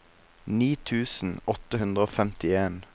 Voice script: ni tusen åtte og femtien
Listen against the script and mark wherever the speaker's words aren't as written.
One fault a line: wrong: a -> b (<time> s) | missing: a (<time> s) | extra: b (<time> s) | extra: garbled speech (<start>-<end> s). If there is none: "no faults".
extra: hundre (1.8 s)